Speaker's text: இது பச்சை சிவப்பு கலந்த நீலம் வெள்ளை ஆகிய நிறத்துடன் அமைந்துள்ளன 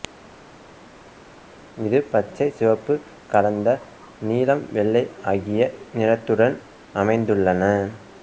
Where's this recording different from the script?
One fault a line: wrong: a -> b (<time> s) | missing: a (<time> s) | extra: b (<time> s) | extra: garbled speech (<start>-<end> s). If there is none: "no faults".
no faults